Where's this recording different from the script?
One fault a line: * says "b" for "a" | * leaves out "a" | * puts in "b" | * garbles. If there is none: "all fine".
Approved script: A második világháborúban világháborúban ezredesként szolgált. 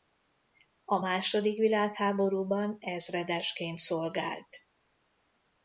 * leaves out "világháborúban"